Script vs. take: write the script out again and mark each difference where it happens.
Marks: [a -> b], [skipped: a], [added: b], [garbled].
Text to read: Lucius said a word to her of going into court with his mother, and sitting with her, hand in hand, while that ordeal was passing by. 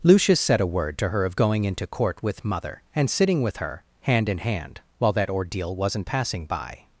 Lucius said a word to her of going into court with [skipped: his] mother, and sitting with her, hand in hand, while that ordeal [was -> wasn't] passing by.